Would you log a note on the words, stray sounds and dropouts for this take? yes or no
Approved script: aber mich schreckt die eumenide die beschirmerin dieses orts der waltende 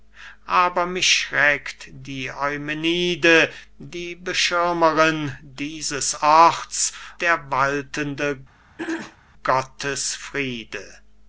yes